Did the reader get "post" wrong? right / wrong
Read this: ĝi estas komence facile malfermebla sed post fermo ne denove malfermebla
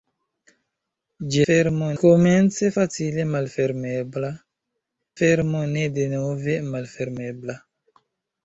wrong